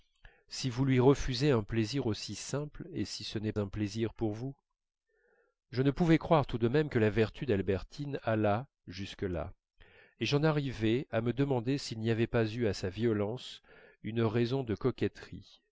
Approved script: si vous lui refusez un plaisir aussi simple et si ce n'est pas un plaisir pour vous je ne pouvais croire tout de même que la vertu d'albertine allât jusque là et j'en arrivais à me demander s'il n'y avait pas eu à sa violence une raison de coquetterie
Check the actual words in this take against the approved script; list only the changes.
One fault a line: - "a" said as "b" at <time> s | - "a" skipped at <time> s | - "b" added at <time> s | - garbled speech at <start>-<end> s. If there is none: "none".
- "pas" skipped at 3.5 s